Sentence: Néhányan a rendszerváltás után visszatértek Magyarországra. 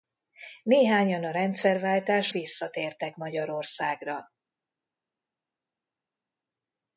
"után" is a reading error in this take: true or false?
true